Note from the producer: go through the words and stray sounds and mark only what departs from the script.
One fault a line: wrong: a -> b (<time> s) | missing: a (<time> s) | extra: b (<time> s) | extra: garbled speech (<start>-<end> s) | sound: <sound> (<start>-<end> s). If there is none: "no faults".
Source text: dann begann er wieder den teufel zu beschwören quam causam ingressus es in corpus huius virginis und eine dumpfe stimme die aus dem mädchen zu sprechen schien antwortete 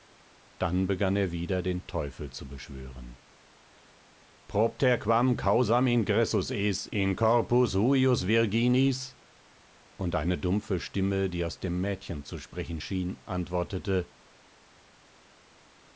extra: propter (4.5 s)